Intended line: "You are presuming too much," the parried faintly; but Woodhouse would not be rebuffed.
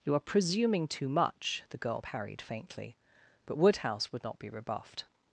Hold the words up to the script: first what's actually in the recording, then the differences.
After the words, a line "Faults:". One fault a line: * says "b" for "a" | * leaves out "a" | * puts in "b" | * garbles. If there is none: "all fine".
"You are presuming too much," the girl parried faintly; but Woodhouse would not be rebuffed.
Faults:
* puts in "girl"